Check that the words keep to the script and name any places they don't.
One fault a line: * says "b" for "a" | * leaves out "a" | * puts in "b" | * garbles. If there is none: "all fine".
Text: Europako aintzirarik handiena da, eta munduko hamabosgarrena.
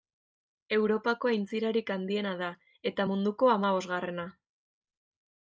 all fine